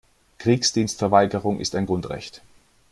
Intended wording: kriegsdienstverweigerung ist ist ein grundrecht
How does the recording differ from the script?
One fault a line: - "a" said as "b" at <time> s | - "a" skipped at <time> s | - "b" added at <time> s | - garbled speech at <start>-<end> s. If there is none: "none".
- "ist" skipped at 1.8 s